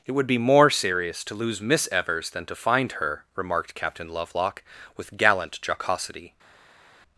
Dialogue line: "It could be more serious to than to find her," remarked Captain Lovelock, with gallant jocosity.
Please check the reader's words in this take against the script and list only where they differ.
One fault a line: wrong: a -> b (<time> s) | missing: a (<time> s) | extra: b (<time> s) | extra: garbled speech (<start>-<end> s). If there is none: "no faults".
wrong: could -> would (0.1 s)
extra: lose Miss Evers (1.4 s)